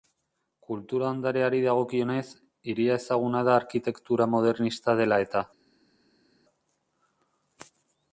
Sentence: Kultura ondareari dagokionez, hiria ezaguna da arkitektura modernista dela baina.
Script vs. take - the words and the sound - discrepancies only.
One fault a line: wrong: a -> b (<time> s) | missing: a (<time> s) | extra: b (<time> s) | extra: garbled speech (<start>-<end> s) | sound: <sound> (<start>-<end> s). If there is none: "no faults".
wrong: baina -> eta (5.3 s)